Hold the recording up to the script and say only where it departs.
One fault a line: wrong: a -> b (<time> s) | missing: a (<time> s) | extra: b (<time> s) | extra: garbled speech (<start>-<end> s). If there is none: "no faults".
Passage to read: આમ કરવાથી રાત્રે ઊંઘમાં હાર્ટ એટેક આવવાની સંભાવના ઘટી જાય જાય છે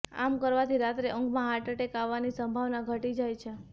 missing: જાય (3.4 s)